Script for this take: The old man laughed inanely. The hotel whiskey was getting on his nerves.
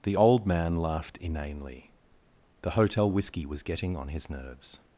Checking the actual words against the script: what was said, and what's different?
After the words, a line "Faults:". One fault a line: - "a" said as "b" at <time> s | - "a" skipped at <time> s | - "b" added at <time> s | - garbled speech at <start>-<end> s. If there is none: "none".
The old man laughed inanely. The hotel whiskey was getting on his nerves.
Faults:
none